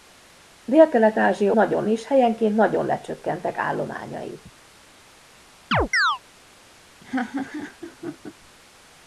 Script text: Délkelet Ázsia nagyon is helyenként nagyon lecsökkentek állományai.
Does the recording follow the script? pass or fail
pass